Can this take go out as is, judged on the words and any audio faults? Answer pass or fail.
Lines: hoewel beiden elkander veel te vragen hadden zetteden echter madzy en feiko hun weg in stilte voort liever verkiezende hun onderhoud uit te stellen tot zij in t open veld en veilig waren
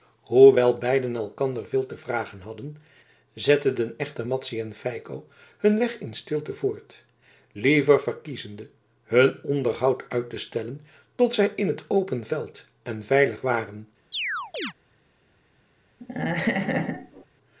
fail